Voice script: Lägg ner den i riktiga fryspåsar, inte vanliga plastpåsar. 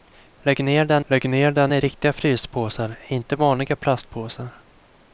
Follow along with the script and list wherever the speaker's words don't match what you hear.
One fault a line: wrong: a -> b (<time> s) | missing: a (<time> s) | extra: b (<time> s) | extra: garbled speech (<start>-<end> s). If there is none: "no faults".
extra: lägg ner den (1.1 s)